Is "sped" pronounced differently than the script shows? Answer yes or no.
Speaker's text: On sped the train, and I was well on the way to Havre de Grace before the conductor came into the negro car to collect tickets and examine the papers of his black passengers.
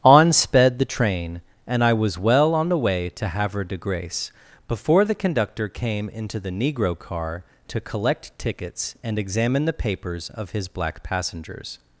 no